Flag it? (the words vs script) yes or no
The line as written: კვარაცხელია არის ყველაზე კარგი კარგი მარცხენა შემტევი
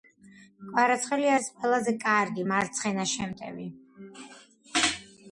yes